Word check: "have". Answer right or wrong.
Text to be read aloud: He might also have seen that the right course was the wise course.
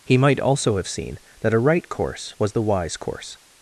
right